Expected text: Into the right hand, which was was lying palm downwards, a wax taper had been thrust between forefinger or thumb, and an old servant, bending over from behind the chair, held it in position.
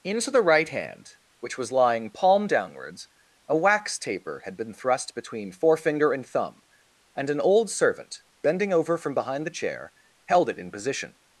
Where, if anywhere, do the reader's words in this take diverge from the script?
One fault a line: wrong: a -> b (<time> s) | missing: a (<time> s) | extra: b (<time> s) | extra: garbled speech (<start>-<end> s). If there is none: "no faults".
missing: was (1.7 s)
wrong: or -> and (6.1 s)